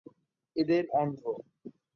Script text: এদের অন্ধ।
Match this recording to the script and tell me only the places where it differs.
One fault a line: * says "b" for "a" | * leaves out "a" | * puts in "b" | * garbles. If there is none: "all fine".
all fine